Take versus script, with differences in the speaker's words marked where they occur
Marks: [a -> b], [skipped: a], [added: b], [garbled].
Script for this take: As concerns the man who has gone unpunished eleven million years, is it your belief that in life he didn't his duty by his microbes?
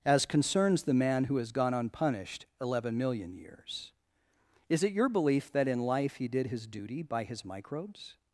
As concerns the man who has gone unpunished eleven million years, is it your belief that in life he [didn't -> did] his duty by his microbes?